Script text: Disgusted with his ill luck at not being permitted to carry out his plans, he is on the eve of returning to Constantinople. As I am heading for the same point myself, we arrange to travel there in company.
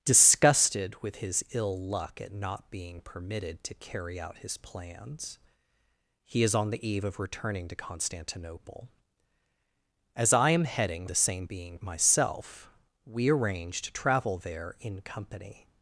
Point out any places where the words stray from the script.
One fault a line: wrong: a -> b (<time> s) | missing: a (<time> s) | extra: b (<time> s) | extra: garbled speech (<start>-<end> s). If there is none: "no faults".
missing: for (11.1 s)
wrong: point -> being (11.5 s)